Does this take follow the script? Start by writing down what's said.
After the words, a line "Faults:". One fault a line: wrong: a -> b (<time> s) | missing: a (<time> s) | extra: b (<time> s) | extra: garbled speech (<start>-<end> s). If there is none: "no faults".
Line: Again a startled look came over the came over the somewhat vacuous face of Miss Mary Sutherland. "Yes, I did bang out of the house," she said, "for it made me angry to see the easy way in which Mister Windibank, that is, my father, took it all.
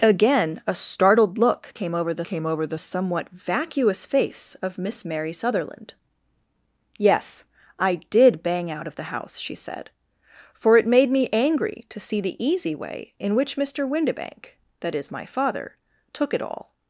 Again a startled look came over the came over the somewhat vacuous face of Miss Mary Sutherland. "Yes, I did bang out of the house," she said, "for it made me angry to see the easy way in which Mister Windibank, that is, my father, took it all.
Faults:
no faults